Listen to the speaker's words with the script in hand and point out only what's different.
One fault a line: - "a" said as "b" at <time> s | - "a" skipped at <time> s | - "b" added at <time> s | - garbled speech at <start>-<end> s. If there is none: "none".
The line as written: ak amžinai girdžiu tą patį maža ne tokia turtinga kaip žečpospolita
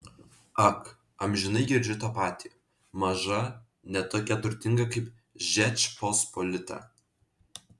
none